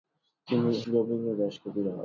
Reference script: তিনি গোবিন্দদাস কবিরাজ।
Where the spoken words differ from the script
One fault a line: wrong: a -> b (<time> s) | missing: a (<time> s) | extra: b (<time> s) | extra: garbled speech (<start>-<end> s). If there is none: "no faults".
no faults